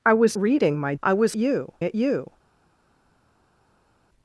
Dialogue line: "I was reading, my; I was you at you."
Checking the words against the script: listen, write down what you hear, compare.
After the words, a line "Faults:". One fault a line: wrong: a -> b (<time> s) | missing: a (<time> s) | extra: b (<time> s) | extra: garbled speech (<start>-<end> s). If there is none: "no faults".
"I was reading, my; I was you at you."
Faults:
no faults